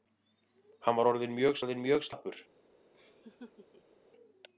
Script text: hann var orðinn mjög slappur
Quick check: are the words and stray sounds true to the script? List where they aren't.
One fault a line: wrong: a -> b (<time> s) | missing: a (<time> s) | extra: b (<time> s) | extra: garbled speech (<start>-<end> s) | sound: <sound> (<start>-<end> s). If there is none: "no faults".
extra: orðinn mjög (1.6 s)
sound: laugh (2.9-4.0 s)